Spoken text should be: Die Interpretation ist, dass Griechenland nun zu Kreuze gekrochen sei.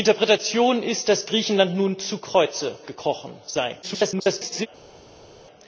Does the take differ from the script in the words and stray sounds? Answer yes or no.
yes